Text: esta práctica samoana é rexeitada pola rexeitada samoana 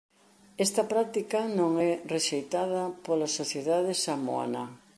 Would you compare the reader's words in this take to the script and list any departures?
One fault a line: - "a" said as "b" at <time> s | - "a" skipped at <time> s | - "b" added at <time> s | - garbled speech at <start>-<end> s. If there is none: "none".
- "samoana" said as "non" at 1.6 s
- "rexeitada" said as "sociedade" at 3.4 s